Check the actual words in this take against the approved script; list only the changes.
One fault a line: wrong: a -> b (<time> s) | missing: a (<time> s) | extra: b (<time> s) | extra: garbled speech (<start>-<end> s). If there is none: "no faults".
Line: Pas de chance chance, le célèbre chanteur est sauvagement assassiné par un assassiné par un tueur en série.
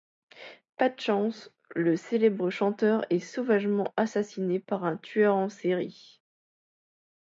missing: chance (1.5 s)
missing: assassiné par un (5.0 s)